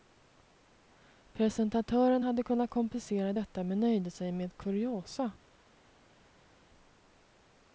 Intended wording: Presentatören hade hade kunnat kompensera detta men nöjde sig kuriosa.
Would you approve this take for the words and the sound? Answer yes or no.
no